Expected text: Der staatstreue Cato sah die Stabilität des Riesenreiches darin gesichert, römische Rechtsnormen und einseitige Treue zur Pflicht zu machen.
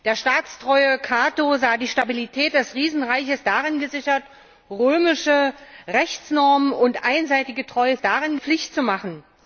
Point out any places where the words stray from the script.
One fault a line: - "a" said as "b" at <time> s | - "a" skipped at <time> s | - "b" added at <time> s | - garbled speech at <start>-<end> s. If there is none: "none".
- "zur" said as "darin" at 8.0 s